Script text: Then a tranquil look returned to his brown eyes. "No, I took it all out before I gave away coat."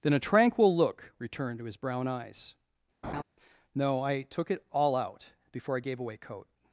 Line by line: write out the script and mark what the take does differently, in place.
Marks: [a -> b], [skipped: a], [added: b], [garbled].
Then a tranquil look returned to his brown eyes. "No, I took it all out before I gave away coat."